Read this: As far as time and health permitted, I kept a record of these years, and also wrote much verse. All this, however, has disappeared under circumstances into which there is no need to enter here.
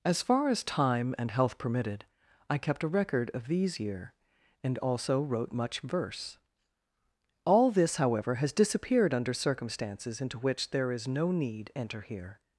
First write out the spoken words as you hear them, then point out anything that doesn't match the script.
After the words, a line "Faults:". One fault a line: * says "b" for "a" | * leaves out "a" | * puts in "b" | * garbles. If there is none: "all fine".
As far as time and health permitted, I kept a record of these year, and also wrote much verse. All this, however, has disappeared under circumstances into which there is no need enter here.
Faults:
* says "year" for "years"
* leaves out "to"